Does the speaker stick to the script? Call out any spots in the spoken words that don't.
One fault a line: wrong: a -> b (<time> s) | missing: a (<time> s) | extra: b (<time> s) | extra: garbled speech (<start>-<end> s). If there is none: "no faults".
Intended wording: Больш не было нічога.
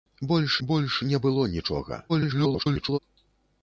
extra: больш (0.7 s)
extra: garbled speech (2.1-3.0 s)